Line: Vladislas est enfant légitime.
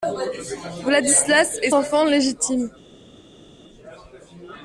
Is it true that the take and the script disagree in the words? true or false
false